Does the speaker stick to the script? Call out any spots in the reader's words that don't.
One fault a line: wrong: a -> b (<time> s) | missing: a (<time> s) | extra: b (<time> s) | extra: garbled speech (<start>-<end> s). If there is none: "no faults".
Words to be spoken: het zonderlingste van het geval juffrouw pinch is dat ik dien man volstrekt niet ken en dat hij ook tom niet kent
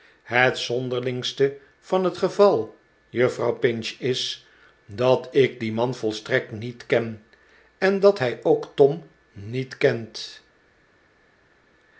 no faults